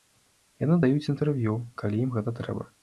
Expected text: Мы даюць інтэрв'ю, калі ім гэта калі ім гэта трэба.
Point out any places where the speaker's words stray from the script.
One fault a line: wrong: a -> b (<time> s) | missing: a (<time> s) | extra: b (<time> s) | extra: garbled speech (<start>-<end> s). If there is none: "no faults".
wrong: Мы -> Яны (0.6 s)
missing: калі ім гэта (2.4 s)